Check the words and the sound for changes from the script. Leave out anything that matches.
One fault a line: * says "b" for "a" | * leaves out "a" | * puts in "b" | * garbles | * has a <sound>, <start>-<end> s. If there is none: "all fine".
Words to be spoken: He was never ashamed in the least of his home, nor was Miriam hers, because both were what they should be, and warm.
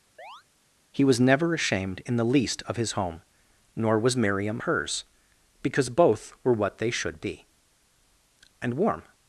* has a chirp, 0.2-0.4 s